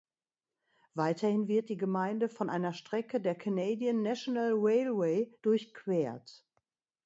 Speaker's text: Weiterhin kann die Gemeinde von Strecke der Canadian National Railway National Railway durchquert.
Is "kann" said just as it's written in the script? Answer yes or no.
no